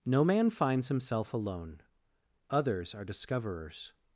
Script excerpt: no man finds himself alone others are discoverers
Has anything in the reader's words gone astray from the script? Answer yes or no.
no